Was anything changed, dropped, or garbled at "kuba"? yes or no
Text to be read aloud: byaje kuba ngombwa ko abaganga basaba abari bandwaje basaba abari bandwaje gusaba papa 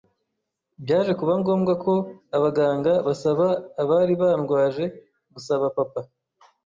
no